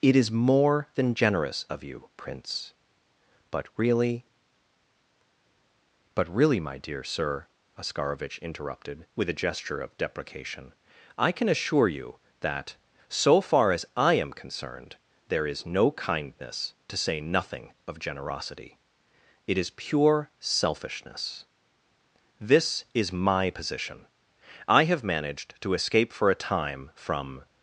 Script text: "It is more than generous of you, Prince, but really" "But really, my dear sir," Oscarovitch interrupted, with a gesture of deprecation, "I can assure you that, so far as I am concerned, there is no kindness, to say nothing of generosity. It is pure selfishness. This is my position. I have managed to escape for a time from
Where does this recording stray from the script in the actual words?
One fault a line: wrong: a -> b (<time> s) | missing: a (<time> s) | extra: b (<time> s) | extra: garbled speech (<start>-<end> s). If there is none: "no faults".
no faults